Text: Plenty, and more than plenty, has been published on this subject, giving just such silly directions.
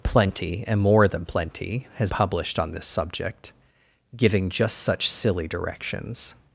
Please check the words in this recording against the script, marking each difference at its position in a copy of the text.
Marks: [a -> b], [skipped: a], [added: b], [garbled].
Plenty, and more than plenty, has [skipped: been] published on this subject, giving just such silly directions.